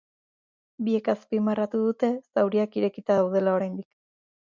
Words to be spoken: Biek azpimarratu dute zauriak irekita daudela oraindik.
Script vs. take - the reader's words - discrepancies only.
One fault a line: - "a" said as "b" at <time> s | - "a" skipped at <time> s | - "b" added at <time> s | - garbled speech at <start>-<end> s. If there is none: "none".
none